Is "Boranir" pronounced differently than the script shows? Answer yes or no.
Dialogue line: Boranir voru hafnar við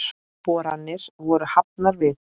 no